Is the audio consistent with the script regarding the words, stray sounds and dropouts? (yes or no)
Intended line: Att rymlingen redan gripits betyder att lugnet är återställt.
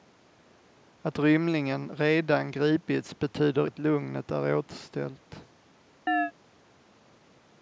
no